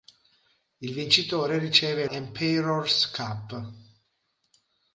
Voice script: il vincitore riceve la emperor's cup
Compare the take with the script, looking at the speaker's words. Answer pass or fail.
fail